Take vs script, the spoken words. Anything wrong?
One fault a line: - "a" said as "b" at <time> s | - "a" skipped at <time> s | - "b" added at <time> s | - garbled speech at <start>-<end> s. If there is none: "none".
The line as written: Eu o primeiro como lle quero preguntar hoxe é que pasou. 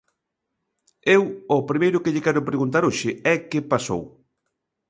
- "como" said as "que" at 2.0 s